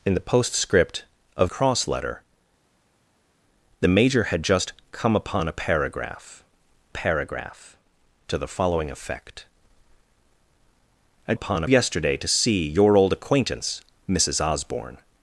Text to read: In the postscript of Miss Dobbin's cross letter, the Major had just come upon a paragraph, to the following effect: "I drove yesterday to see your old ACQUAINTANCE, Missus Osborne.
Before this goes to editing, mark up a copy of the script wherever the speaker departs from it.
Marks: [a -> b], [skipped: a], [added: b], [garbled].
In the postscript of [skipped: Miss Dobbin's] cross letter, the Major had just come upon a paragraph, [added: paragraph] to the following effect: "I [drove -> upon] yesterday to see your old ACQUAINTANCE, Missus Osborne.